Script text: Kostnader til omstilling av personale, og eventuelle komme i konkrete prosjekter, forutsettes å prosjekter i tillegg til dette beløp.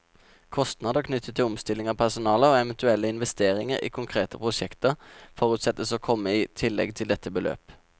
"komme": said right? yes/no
no